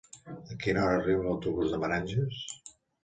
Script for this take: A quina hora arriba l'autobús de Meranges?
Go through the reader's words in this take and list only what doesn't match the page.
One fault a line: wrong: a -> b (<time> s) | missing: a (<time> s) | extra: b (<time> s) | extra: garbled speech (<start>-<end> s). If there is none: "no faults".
no faults